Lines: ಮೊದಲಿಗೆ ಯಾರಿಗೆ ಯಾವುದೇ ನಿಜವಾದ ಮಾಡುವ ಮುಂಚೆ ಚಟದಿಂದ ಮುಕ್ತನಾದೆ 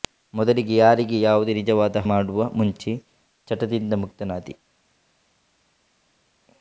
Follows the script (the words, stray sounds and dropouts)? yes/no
yes